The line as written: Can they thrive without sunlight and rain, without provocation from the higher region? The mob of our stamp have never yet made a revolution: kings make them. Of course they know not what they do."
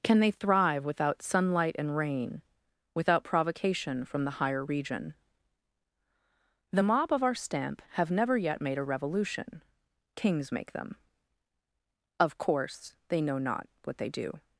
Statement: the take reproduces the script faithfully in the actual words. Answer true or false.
true